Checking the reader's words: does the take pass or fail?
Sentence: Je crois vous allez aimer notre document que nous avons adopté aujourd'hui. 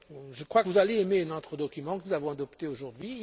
pass